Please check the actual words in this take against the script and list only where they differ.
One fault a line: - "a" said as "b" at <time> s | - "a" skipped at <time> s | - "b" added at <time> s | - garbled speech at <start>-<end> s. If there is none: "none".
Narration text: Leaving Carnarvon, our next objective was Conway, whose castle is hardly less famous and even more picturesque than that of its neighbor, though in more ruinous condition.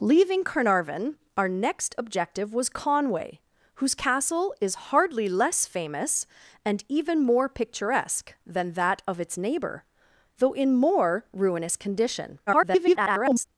- garbled speech at 12.5-13.4 s